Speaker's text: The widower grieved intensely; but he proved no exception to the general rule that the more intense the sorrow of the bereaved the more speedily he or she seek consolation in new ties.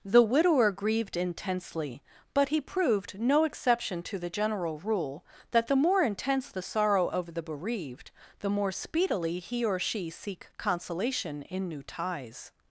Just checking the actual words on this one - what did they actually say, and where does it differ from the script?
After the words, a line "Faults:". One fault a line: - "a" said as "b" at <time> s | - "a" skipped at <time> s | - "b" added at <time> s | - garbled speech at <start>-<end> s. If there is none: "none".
The widower grieved intensely; but he proved no exception to the general rule that the more intense the sorrow of the bereaved the more speedily he or she seek consolation in new ties.
Faults:
none